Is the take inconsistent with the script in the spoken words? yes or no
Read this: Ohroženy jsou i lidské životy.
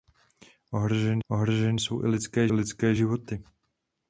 yes